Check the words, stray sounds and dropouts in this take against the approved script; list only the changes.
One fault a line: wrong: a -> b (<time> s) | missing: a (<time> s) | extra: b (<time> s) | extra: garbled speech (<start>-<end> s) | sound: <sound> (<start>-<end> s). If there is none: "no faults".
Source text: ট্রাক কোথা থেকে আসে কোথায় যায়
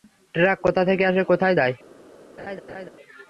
sound: laugh (2.4-2.9 s)